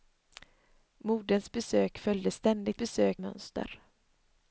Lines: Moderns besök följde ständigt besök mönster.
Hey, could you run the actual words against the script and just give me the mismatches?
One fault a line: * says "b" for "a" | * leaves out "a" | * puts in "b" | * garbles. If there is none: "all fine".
all fine